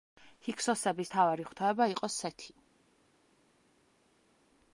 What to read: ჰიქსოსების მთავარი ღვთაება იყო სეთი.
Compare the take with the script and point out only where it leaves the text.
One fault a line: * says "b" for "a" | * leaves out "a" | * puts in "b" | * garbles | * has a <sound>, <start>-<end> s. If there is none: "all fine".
all fine